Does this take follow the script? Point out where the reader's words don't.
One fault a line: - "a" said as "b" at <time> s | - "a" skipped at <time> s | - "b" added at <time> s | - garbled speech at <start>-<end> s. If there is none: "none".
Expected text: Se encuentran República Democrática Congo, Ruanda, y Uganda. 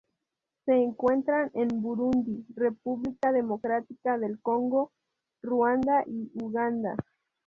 - "en Burundi" added at 1.5 s
- "del" added at 4.2 s